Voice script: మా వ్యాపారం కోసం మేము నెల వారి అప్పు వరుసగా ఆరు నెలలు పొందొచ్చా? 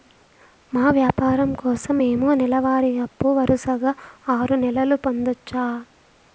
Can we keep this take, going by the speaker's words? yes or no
yes